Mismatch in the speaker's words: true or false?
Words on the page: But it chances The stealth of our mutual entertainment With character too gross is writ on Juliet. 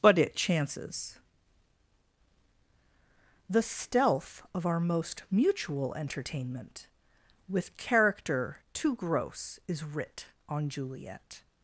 true